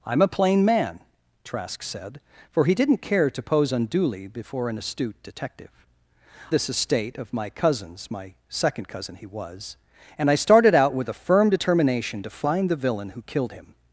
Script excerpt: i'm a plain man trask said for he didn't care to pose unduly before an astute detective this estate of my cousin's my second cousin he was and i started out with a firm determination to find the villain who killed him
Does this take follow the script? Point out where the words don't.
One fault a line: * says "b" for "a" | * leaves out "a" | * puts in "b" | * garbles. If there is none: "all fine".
all fine